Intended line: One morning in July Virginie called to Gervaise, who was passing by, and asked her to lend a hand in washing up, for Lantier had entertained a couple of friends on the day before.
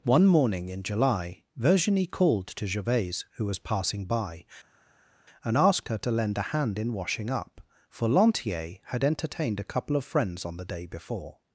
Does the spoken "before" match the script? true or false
true